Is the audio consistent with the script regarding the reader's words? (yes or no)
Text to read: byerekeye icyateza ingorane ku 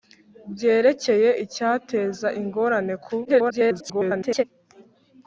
no